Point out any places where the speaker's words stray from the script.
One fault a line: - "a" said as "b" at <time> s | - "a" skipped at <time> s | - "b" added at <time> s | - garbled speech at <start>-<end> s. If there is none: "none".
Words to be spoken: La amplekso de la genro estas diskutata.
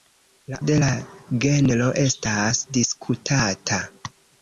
- "amplekso" skipped at 0.6 s